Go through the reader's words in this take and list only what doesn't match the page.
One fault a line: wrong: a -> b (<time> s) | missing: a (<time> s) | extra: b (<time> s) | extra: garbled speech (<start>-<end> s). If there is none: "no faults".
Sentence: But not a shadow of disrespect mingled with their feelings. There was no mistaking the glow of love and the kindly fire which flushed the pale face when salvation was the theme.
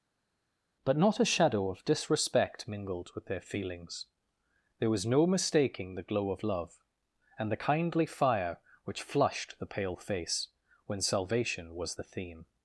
no faults